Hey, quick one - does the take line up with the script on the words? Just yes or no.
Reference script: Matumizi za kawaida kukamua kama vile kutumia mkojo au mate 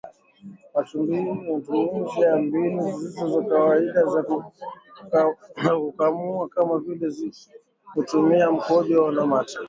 no